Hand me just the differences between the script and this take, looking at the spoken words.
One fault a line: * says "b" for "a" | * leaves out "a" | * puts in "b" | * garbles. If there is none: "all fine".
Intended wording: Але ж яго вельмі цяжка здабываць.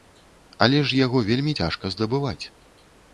all fine